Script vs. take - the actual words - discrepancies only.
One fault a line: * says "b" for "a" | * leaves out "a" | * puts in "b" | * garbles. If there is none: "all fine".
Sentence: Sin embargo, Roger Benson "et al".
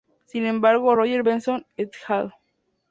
all fine